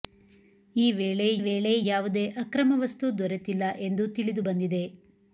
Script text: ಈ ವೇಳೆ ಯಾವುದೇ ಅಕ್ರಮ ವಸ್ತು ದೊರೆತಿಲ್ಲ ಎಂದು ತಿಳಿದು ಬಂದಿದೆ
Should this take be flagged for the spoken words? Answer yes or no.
yes